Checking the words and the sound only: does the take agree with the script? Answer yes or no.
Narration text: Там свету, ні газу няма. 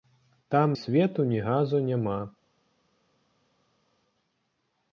yes